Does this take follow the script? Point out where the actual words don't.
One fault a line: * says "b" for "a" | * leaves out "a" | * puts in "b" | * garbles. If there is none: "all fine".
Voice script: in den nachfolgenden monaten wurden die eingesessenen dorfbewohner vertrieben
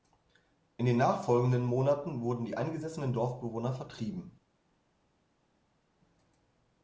all fine